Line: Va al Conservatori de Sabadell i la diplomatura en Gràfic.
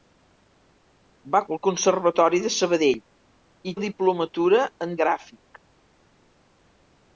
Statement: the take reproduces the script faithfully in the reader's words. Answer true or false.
true